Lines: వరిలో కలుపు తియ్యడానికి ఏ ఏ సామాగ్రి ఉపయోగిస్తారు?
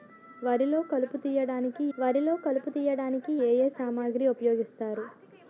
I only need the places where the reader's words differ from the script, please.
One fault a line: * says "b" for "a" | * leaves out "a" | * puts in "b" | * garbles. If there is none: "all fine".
* puts in "వరిలో కలుపు తియ్యడానికి"